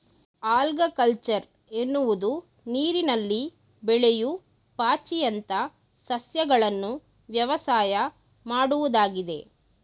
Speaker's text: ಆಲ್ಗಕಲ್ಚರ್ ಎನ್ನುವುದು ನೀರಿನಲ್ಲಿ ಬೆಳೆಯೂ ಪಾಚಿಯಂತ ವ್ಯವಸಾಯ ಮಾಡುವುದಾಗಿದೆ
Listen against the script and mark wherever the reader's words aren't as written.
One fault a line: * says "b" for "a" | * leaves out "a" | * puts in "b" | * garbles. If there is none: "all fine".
* puts in "ಸಸ್ಯಗಳನ್ನು"